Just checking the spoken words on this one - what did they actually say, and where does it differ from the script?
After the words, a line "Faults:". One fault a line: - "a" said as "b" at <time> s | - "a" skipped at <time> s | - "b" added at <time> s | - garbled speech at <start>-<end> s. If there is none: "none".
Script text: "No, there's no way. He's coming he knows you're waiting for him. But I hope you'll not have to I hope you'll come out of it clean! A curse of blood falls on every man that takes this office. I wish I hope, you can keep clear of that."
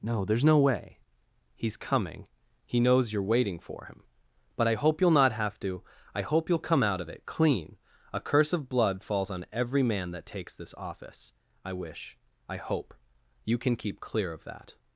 "No, there's no way. He's coming he knows you're waiting for him. But I hope you'll not have to I hope you'll come out of it clean! A curse of blood falls on every man that takes this office. I wish I hope, you can keep clear of that."
Faults:
none